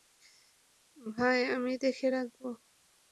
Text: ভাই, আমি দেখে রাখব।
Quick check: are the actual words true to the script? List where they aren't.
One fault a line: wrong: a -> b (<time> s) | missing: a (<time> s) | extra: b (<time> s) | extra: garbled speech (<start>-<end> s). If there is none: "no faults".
no faults